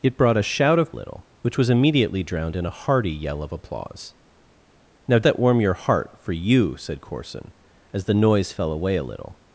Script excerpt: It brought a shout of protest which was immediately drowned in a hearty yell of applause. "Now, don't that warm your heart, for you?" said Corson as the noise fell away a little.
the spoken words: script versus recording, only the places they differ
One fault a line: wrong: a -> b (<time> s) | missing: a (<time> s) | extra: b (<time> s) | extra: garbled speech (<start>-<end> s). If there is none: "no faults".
wrong: protest -> little (0.9 s)
missing: don't (5.2 s)